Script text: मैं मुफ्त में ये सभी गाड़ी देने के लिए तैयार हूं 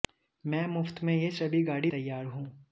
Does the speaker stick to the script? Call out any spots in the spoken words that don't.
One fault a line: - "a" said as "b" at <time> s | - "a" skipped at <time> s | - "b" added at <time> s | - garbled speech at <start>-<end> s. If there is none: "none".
- "देने के लिए" skipped at 1.9 s